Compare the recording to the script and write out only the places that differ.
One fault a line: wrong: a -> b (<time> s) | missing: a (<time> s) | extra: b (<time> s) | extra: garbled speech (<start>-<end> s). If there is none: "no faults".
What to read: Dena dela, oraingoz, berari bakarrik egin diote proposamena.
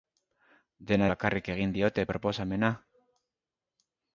missing: dela oraingoz berari (1.1 s)